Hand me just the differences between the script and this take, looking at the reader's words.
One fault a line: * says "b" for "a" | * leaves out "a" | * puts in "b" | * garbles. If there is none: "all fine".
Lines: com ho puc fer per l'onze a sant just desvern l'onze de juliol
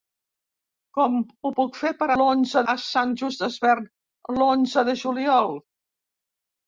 all fine